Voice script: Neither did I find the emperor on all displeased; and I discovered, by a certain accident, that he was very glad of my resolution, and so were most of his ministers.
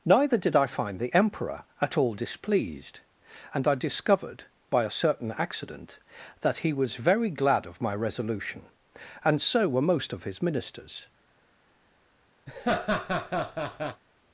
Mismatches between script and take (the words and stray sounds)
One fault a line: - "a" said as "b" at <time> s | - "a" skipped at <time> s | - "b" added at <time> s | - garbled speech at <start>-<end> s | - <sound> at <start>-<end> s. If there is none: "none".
- "on" said as "at" at 1.8 s
- laugh at 12.5-14.0 s